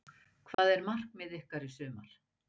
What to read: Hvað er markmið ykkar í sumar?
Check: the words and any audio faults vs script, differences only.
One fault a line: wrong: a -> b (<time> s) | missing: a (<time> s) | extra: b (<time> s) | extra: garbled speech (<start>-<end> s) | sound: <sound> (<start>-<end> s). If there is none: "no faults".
sound: dropout (0.5-0.6 s)